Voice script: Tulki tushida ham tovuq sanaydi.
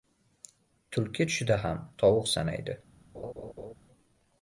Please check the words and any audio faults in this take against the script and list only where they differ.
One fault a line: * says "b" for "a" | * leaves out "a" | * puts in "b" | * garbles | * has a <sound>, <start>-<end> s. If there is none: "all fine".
* has a laugh, 3.1-3.7 s